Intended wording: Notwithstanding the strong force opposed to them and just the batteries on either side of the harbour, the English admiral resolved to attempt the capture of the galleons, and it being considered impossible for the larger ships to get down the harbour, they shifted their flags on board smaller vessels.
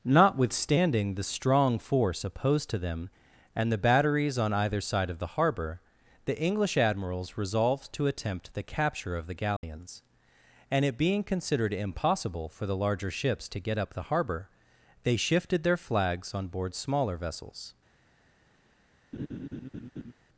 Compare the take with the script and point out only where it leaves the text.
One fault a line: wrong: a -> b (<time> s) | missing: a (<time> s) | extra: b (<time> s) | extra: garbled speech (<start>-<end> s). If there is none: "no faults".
missing: just (3.7 s)
wrong: admiral -> admirals (6.8 s)
wrong: down -> up (13.8 s)